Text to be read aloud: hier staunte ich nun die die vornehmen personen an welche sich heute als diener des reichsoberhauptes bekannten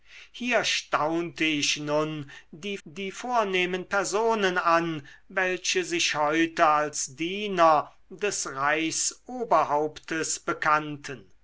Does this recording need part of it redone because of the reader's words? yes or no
no